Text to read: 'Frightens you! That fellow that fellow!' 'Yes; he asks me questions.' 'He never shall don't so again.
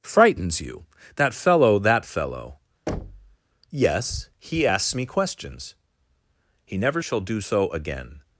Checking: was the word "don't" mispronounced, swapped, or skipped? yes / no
yes